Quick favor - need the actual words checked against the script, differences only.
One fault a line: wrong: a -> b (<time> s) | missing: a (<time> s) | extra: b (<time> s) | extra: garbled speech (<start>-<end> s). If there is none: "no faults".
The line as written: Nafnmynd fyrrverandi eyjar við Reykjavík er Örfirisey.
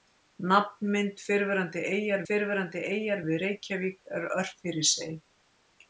extra: fyrrverandi eyjar (2.3 s)